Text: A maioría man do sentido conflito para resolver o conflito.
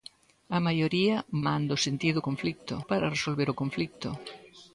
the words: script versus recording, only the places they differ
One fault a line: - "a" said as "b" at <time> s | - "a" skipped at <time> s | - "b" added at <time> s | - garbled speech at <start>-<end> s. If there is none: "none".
none